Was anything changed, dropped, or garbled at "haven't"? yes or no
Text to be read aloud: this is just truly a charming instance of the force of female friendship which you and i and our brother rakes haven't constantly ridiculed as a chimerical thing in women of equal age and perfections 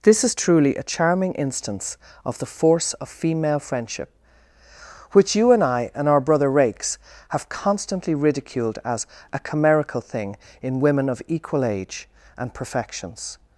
yes